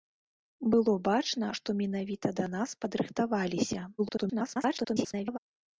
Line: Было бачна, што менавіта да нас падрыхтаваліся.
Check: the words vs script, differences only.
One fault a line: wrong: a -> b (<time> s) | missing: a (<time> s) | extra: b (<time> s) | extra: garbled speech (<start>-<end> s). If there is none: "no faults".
extra: garbled speech (4.0-5.4 s)